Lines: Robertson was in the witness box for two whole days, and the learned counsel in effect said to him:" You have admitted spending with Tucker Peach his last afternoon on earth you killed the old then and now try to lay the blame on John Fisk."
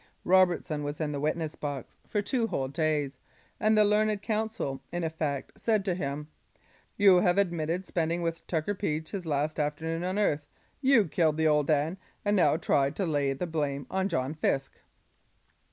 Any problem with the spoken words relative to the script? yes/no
no